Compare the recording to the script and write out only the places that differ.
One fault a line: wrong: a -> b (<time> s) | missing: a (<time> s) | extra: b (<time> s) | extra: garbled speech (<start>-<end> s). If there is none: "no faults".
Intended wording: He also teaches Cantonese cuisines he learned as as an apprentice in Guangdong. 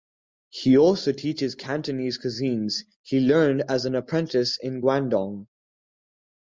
missing: as (3.9 s)